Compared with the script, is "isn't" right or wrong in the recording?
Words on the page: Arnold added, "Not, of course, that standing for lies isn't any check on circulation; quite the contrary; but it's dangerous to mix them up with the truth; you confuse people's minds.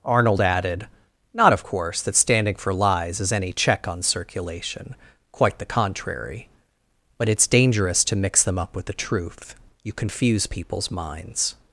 wrong